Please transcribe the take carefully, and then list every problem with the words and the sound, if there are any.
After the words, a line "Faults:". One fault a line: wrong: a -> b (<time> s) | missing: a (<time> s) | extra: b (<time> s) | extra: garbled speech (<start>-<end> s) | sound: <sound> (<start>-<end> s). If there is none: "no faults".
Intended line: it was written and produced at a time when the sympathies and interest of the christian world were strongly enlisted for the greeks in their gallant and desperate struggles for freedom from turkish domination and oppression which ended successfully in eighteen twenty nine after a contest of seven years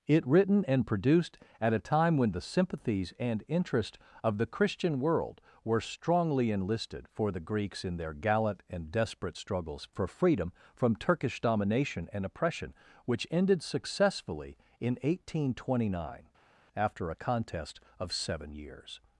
it written and produced at a time when the sympathies and interest of the christian world were strongly enlisted for the greeks in their gallant and desperate struggles for freedom from turkish domination and oppression which ended successfully in eighteen twenty nine after a contest of seven years
Faults:
missing: was (0.2 s)